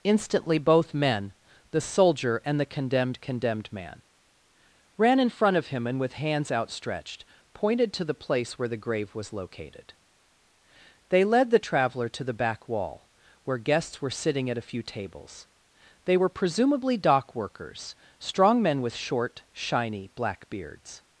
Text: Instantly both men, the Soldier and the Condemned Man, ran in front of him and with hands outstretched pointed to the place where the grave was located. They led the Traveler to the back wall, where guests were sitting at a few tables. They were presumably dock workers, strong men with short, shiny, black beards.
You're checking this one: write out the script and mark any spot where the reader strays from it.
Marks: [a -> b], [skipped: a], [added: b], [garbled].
Instantly both men, the Soldier and the Condemned [added: Condemned] Man, ran in front of him and with hands outstretched pointed to the place where the grave was located. They led the Traveler to the back wall, where guests were sitting at a few tables. They were presumably dock workers, strong men with short, shiny, black beards.